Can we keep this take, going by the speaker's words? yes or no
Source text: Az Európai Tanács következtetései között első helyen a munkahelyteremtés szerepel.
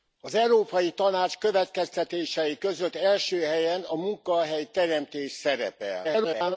no